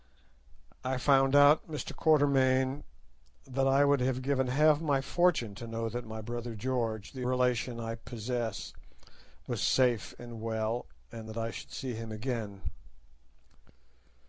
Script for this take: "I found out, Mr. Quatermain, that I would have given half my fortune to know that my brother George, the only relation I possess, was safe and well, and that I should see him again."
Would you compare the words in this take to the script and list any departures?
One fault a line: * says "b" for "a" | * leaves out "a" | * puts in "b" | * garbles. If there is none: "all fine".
* leaves out "only"